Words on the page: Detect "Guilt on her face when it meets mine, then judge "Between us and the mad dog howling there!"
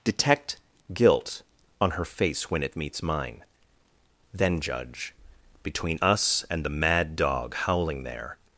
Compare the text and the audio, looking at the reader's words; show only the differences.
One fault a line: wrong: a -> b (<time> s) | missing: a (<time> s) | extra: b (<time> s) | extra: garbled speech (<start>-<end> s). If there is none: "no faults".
no faults